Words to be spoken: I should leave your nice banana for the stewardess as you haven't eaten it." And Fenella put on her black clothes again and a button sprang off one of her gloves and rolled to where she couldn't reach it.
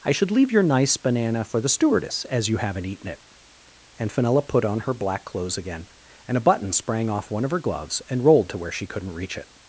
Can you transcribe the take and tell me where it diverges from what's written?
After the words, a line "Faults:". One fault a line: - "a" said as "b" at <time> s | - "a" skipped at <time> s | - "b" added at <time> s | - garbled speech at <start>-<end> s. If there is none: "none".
I should leave your nice banana for the stewardess as you haven't eaten it." And Fenella put on her black clothes again and a button sprang off one of her gloves and rolled to where she couldn't reach it.
Faults:
none